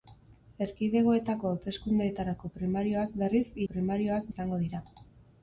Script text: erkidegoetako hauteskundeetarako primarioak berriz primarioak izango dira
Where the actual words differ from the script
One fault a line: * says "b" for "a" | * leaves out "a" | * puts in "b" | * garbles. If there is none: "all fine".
all fine